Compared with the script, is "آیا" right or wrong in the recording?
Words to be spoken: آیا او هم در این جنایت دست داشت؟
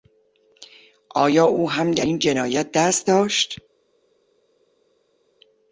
right